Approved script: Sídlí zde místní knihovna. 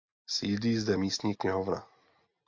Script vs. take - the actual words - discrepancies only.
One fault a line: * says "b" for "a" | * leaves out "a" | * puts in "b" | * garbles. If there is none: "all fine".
all fine